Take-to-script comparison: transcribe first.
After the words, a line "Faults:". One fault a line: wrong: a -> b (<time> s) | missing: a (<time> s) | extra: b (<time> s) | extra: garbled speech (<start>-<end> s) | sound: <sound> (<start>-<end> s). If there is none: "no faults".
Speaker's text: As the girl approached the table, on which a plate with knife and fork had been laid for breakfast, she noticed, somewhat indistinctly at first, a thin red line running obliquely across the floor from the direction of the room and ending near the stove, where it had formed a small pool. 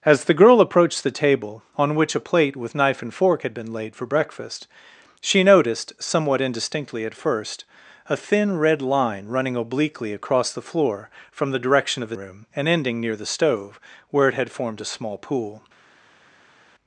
As the girl approached the table, on which a plate with knife and fork had been laid for breakfast, she noticed, somewhat indistinctly at first, a thin red line running obliquely across the floor from the direction of the room and ending near the stove, where it had formed a small pool.
Faults:
no faults